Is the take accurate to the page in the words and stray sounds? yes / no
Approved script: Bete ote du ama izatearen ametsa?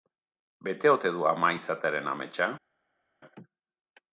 yes